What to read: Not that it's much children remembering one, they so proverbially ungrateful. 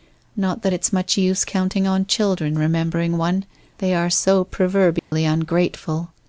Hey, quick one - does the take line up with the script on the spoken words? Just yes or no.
no